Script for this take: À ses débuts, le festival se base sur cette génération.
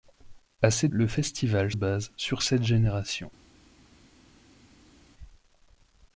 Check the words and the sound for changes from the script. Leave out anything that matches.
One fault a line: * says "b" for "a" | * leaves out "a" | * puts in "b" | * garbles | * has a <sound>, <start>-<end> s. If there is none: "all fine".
* leaves out "débuts"
* leaves out "se"